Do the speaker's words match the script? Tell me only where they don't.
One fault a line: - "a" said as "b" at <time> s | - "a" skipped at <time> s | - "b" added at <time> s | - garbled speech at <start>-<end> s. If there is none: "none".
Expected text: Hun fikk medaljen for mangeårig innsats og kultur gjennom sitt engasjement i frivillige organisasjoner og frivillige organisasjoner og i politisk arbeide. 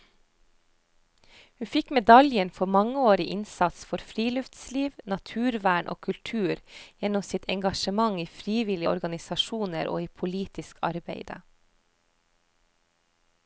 - "for friluftsliv naturvern" added at 3.9 s
- "frivillige organisasjoner og" skipped at 10.0 s